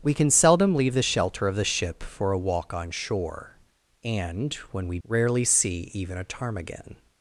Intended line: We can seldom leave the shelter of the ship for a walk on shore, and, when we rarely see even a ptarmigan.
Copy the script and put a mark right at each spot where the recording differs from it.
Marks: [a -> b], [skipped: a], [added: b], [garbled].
We can seldom leave the shelter of the ship for a walk on shore, and, when we rarely see even a ptarmigan.